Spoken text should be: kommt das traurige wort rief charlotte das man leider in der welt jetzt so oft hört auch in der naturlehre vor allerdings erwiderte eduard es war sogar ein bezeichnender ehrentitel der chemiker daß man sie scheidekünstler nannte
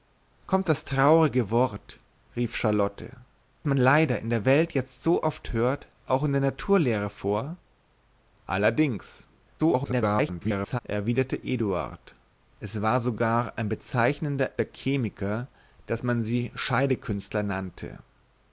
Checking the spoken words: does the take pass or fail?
fail